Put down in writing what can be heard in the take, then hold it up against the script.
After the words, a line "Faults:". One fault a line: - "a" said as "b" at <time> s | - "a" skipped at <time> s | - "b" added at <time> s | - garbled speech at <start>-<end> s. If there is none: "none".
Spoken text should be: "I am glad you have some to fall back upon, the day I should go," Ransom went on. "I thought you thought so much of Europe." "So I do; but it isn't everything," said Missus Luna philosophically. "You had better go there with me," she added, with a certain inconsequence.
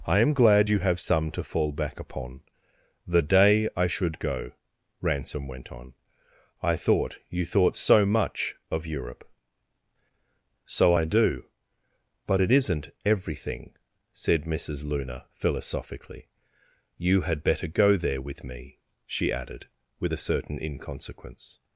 "I am glad you have some to fall back upon, the day I should go," Ransom went on. "I thought you thought so much of Europe." "So I do; but it isn't everything," said Missus Luna philosophically. "You had better go there with me," she added, with a certain inconsequence.
Faults:
none